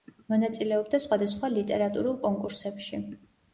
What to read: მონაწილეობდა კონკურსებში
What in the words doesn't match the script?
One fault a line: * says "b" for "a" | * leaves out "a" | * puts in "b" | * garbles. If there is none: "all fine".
* puts in "სხვადასხვა ლიტერატურულ"